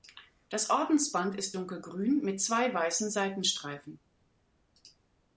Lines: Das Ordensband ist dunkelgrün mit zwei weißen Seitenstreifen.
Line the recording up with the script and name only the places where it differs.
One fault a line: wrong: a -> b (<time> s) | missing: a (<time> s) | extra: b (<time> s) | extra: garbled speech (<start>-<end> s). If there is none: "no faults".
no faults